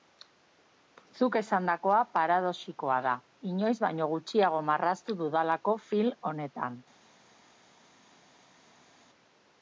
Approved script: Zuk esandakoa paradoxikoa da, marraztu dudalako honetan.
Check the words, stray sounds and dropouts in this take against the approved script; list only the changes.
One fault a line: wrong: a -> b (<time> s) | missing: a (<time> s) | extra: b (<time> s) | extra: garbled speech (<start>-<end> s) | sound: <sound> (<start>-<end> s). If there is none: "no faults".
extra: inoiz baino gutxiago (3.5 s)
extra: film (5.9 s)